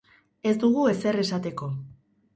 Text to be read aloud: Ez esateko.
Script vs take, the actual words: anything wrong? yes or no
yes